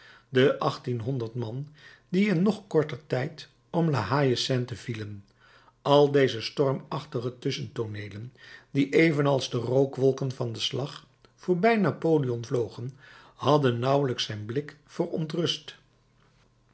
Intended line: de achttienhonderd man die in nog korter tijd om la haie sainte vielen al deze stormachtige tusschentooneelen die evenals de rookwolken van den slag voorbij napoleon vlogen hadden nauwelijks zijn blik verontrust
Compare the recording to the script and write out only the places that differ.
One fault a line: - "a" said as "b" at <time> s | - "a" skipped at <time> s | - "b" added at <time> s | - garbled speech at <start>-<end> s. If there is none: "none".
none